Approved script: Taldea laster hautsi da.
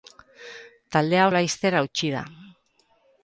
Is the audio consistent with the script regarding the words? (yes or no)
yes